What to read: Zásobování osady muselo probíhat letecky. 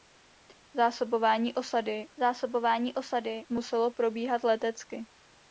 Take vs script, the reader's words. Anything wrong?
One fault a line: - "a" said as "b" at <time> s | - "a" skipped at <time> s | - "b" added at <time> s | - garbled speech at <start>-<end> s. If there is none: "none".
- "zásobování osady" added at 2.2 s